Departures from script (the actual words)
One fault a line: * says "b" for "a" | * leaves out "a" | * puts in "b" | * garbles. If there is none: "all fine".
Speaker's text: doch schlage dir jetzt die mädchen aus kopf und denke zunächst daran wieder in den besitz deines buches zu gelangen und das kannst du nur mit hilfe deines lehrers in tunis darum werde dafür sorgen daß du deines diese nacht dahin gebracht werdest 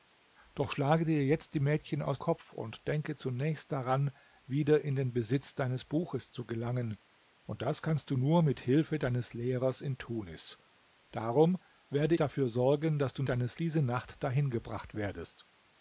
all fine